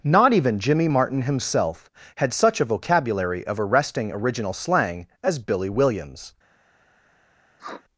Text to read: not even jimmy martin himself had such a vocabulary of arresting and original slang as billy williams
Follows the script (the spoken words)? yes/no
no